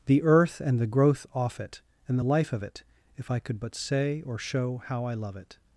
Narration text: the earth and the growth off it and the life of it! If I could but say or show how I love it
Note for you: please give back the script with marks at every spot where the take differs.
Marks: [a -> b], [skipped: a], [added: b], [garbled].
the earth and the growth off it and the life of it! If I could but say or show how I love it